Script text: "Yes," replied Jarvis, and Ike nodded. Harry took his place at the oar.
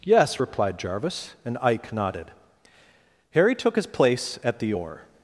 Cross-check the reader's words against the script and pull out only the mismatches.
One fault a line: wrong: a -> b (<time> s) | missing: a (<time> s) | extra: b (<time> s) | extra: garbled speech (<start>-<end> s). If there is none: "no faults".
no faults